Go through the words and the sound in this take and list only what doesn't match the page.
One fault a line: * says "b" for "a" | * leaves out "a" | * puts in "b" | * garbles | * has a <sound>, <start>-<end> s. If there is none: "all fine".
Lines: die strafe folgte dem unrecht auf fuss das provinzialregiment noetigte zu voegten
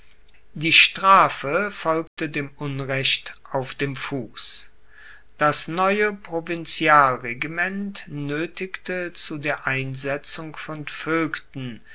* has a dropout, 2.1-2.2 s
* puts in "dem"
* puts in "neue"
* puts in "der einsetzung von"